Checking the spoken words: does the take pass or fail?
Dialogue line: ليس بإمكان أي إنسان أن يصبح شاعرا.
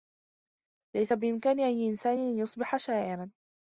pass